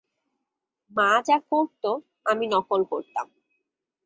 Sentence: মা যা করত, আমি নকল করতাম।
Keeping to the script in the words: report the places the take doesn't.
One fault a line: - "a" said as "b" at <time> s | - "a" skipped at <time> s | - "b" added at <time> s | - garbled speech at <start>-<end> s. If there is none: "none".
none